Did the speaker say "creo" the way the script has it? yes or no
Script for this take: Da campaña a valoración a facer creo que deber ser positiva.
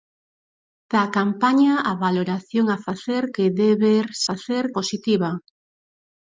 no